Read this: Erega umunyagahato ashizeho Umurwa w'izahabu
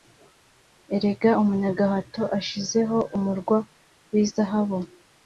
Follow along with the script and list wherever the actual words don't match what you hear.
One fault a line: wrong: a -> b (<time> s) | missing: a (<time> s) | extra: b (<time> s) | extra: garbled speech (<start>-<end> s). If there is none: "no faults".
no faults